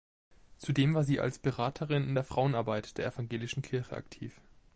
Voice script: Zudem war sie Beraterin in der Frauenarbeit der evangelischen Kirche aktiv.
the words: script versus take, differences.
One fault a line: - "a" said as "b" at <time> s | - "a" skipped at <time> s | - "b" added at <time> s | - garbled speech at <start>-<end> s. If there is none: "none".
- "als" added at 1.2 s